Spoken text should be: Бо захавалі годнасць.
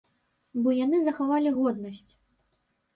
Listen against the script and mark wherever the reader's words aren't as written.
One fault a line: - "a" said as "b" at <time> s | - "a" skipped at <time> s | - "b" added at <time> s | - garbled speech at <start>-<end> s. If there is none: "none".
- "яны" added at 0.8 s